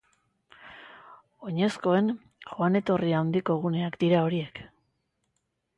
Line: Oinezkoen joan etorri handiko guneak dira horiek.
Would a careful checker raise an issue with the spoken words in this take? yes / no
no